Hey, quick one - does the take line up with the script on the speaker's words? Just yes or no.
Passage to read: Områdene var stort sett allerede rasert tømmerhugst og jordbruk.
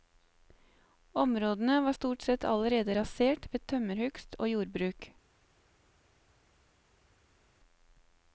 no